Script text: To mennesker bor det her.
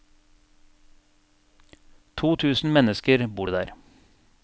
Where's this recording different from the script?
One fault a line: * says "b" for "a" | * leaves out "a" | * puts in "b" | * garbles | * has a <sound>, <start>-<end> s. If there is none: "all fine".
* puts in "tusen"
* says "der" for "her"